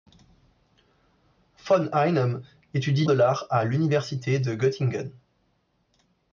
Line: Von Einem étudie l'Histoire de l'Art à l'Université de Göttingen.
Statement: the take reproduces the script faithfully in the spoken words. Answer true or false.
false